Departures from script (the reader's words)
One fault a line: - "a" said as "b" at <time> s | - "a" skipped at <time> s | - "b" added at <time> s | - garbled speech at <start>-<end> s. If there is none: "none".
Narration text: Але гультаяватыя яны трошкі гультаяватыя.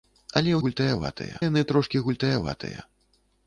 none